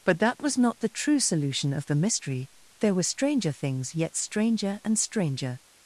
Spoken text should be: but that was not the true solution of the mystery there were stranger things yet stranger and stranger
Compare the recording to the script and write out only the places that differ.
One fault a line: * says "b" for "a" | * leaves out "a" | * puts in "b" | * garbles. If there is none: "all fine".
all fine